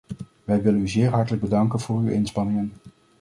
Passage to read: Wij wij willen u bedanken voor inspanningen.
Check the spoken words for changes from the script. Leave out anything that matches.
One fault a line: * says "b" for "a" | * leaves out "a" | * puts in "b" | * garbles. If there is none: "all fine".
* leaves out "wij"
* puts in "zeer hartelijk"
* puts in "uw"